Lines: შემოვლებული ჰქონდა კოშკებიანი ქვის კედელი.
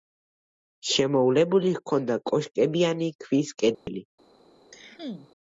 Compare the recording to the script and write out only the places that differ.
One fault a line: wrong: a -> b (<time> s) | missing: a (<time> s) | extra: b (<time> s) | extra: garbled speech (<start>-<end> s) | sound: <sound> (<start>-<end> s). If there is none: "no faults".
sound: dropout (3.7-3.9 s)
sound: cough (4.7-5.3 s)